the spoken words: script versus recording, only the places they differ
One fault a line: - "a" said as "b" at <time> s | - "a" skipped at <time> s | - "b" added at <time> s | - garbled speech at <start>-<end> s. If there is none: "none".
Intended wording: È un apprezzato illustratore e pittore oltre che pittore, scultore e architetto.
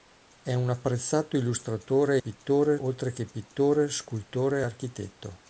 none